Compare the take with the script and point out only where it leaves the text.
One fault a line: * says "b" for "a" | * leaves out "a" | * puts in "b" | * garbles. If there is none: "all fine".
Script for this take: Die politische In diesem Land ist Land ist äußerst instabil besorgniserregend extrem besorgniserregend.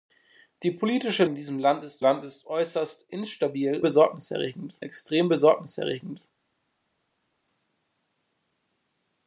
all fine